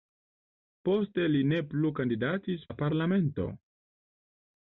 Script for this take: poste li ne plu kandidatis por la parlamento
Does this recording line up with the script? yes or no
no